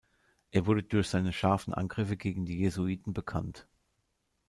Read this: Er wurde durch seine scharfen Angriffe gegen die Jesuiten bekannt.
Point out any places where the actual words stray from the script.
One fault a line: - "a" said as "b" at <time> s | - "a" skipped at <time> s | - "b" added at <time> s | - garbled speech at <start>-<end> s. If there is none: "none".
none